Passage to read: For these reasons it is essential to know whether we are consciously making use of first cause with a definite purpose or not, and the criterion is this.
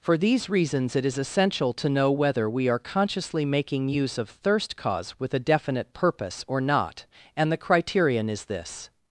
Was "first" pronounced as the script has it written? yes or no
no